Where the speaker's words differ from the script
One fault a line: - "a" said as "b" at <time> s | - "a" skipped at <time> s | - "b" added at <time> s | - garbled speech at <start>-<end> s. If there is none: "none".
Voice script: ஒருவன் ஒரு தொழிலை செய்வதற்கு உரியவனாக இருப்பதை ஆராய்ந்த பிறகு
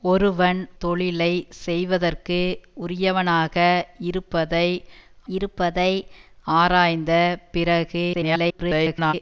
- "ஒரு" skipped at 0.6 s
- "இருப்பதை" added at 5.3 s
- garbled speech at 8.1-9.1 s